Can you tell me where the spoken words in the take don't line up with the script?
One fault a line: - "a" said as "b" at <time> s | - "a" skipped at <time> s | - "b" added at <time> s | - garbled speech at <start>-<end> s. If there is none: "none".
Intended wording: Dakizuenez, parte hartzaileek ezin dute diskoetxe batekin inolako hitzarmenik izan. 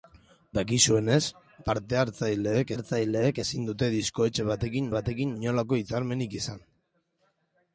- "hartzaileek" added at 2.7 s
- "batekin" added at 5.0 s